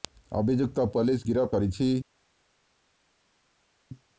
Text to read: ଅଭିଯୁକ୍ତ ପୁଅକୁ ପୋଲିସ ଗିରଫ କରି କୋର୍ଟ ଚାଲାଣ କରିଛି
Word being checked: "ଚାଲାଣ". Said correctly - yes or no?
no